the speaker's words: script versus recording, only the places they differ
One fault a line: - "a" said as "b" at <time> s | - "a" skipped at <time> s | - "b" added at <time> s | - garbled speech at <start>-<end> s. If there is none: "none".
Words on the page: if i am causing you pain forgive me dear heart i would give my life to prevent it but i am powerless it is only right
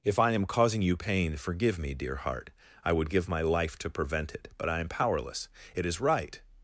- "only" skipped at 6.0 s